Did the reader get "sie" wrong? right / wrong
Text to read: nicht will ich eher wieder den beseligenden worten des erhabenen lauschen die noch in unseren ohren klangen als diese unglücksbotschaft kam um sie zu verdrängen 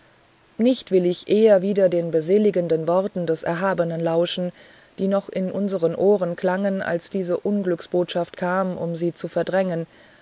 right